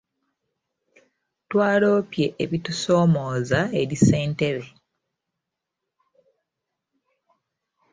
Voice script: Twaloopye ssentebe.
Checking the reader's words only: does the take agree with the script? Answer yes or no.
no